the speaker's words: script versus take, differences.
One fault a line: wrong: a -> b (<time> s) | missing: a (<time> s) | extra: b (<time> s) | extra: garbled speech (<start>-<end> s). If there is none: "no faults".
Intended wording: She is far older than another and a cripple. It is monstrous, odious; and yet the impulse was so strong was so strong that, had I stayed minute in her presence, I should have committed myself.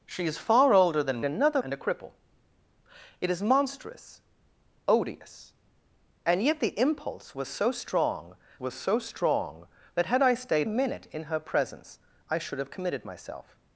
no faults